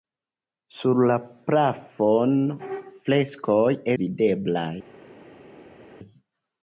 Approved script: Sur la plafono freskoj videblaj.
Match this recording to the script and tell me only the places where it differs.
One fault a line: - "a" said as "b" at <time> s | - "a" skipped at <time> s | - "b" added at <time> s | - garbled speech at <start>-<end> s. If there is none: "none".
none